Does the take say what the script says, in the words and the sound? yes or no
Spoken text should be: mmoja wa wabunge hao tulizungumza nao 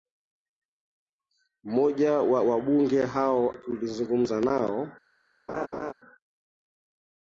no